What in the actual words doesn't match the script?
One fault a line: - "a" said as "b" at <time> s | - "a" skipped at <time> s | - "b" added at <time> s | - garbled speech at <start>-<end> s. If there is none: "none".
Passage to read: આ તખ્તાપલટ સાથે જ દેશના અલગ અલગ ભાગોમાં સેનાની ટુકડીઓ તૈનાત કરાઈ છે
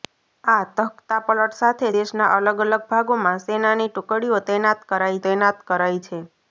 - "જ" skipped at 1.9 s
- "તૈનાત કરાઈ" added at 5.2 s